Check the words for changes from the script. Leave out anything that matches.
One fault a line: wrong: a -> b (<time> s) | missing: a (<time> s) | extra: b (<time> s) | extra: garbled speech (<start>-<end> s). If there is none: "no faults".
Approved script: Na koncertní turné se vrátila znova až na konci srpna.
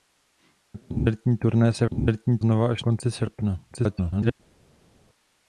wrong: vrátila -> koncertní (1.9 s)
missing: na (2.8 s)
extra: garbled speech (3.7-4.3 s)